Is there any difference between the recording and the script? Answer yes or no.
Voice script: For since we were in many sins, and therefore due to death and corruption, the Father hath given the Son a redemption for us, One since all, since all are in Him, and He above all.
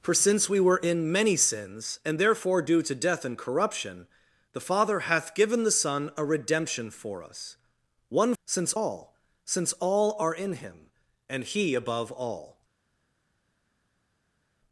no